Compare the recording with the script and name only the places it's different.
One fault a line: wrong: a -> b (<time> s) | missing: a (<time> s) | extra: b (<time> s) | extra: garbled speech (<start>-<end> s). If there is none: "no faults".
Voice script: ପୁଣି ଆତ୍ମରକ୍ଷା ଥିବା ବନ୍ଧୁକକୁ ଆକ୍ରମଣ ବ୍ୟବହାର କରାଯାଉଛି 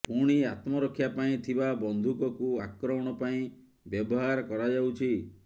extra: ପାଇଁ (1.2 s)
extra: ପାଇଁ (3.2 s)